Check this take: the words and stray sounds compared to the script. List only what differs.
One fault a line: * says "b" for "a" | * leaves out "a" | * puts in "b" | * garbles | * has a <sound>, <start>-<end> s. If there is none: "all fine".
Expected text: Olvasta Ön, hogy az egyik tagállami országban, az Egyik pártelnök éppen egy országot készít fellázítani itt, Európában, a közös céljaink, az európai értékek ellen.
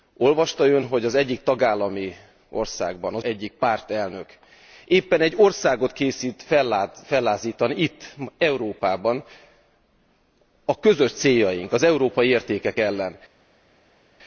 all fine